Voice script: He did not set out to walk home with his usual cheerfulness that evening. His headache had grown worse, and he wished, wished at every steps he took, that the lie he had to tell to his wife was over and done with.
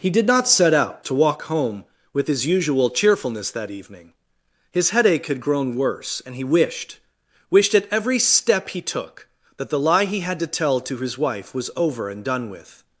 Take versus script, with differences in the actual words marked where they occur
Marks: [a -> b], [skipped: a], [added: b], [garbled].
He did not set out to walk home with his usual cheerfulness that evening. His headache had grown worse, and he wished, wished at every [steps -> step] he took, that the lie he had to tell to his wife was over and done with.